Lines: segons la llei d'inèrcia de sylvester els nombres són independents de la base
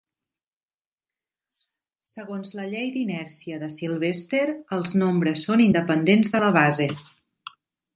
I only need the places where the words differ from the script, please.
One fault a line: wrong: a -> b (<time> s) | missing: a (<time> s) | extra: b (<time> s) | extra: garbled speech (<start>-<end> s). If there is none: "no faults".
no faults